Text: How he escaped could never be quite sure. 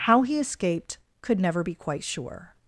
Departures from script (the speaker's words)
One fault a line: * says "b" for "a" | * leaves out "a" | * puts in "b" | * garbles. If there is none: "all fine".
all fine